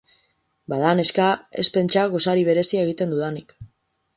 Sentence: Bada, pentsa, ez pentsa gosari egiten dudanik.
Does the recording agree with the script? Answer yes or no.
no